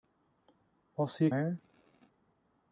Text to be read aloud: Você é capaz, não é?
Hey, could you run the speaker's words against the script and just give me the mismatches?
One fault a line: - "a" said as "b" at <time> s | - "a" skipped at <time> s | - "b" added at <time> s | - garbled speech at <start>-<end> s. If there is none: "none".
- "capaz não" skipped at 1.3 s